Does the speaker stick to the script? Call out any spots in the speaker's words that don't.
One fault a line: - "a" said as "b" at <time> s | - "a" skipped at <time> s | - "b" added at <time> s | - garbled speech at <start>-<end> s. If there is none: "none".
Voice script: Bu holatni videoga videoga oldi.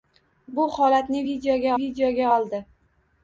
none